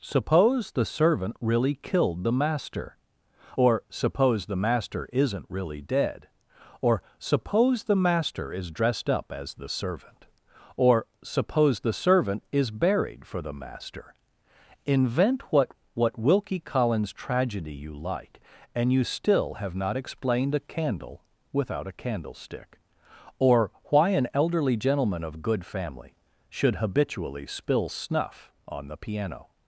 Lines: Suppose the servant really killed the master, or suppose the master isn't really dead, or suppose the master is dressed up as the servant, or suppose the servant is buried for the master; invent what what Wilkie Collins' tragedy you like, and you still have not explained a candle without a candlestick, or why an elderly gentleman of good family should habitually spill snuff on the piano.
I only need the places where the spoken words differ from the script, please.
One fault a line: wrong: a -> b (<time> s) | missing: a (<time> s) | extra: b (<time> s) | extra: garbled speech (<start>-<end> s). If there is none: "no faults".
no faults